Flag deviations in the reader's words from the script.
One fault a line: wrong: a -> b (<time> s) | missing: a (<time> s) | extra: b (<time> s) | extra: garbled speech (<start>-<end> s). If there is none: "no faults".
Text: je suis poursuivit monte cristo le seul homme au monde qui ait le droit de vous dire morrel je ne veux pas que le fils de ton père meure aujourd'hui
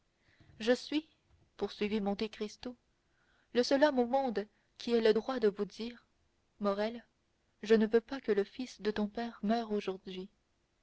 no faults